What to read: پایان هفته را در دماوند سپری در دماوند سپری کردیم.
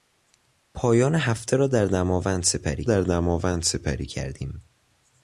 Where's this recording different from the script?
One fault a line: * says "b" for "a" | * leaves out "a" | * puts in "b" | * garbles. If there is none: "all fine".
all fine